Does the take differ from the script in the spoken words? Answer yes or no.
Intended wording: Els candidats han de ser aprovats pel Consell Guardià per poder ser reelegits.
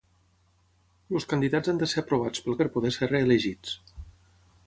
yes